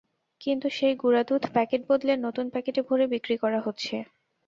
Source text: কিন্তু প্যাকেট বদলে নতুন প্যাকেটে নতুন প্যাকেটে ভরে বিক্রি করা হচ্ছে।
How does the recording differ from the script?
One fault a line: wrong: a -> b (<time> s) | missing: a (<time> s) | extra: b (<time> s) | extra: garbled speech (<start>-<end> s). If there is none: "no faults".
extra: সেই গুঁড়া দুধ (0.7 s)
missing: নতুন প্যাকেটে (2.8 s)